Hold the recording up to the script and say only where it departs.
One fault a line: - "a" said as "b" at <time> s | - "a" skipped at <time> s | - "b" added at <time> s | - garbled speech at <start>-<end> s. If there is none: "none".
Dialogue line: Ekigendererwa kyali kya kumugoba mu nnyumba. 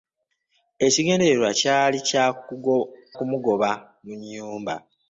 - "kya" skipped at 2.0 s